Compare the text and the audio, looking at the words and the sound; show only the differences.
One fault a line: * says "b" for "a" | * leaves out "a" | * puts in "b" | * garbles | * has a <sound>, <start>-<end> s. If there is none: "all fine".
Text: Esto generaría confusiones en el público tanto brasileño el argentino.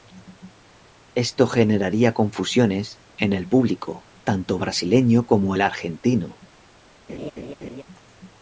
* puts in "como"
* has a laugh, 7.1-7.8 s